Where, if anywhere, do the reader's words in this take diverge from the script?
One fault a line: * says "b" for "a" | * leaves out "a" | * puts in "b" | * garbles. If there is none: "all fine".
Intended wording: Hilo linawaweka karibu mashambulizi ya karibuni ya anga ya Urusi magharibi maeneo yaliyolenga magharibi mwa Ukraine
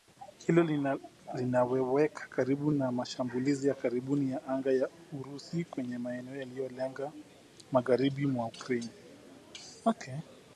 * puts in "na"
* says "kwenye" for "magharibi"